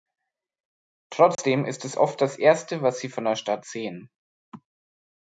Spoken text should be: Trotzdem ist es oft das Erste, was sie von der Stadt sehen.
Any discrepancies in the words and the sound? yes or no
yes